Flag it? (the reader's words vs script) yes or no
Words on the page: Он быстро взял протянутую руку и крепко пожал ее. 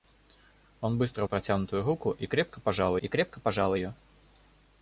yes